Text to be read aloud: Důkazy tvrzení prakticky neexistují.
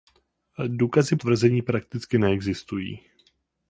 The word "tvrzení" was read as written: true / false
true